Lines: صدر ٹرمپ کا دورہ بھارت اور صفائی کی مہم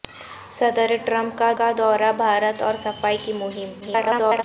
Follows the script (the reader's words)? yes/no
no